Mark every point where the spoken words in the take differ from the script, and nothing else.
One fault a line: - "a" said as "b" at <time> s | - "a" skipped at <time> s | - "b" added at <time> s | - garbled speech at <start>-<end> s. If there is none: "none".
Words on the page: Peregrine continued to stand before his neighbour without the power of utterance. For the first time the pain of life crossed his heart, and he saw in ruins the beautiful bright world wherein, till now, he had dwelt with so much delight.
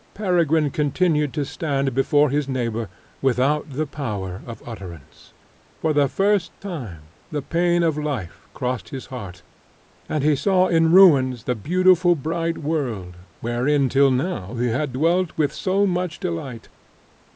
none